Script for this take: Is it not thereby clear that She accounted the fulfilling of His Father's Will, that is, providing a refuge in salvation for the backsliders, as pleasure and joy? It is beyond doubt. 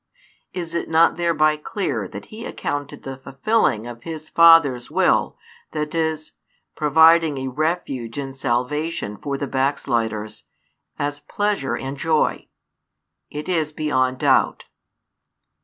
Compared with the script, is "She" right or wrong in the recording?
wrong